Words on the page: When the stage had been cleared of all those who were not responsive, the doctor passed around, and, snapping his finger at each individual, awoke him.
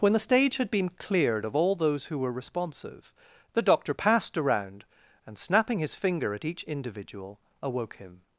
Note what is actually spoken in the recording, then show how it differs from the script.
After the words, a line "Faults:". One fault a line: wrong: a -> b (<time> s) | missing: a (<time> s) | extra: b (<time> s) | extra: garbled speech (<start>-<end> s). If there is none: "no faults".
When the stage had been cleared of all those who were responsive, the doctor passed around, and, snapping his finger at each individual, awoke him.
Faults:
missing: not (2.3 s)